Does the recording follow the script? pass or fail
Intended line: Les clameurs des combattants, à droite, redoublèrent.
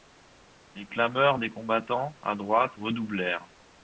pass